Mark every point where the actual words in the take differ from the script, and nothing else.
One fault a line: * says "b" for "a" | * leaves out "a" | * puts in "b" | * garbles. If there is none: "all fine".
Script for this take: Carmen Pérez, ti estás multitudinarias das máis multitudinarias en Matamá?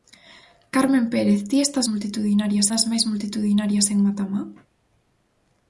all fine